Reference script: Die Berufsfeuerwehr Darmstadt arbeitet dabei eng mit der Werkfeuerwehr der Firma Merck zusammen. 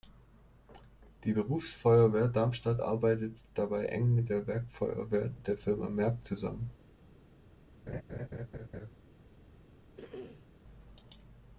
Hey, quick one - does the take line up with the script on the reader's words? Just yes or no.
yes